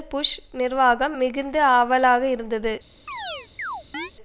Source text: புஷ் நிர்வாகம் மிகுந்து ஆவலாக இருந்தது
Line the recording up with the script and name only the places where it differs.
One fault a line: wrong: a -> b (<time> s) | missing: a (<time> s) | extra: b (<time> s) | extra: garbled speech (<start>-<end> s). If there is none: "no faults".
no faults